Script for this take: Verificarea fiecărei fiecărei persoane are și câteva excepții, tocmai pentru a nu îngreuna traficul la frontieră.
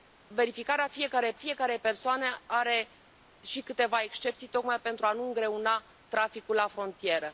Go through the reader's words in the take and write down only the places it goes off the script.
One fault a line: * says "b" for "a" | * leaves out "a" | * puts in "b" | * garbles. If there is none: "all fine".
all fine